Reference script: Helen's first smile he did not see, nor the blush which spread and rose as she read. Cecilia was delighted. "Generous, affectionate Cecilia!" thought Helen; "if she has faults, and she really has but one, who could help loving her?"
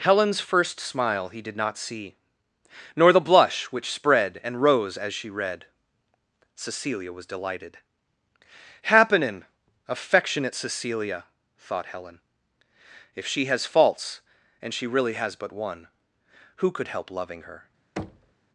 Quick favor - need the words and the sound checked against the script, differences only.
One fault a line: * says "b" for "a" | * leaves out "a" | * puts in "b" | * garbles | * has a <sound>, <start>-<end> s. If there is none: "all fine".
* says "Happenin" for "Generous"
* has a thud, 18.0-18.3 s